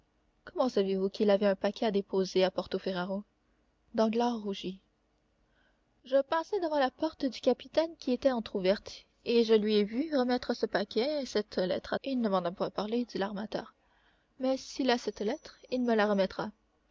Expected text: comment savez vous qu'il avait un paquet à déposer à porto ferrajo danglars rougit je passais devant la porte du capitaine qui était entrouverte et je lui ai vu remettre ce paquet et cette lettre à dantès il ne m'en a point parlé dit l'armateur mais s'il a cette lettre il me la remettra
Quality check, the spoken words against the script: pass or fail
fail